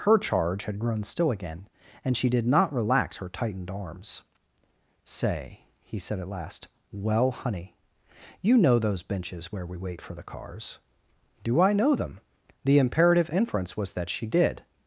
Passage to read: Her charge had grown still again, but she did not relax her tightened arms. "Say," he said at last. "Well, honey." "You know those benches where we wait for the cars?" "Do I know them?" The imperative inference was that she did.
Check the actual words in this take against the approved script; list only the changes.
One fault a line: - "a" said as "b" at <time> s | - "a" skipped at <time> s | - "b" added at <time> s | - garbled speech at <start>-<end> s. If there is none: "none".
- "but" said as "and" at 2.0 s